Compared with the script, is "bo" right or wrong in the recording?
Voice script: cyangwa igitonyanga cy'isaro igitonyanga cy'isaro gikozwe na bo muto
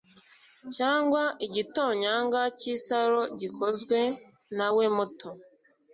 wrong